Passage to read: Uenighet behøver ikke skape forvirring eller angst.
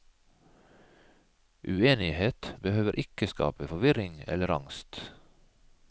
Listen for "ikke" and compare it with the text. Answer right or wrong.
right